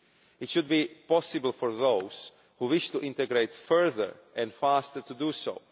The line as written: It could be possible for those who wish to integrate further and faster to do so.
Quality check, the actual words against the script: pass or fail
fail